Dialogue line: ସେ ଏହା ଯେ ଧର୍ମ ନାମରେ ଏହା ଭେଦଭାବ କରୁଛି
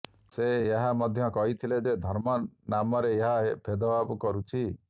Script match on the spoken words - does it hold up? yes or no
no